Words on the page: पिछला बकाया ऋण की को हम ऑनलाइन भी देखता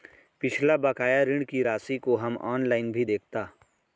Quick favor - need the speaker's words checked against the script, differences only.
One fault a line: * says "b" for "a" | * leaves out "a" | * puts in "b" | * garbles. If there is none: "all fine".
* puts in "राशि"